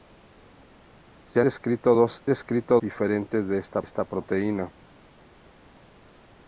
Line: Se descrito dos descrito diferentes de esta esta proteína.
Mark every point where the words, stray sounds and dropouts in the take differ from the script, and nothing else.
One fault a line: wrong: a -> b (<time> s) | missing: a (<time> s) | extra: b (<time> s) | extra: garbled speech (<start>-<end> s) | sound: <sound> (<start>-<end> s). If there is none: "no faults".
no faults